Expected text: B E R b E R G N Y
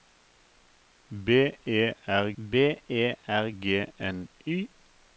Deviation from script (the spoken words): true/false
false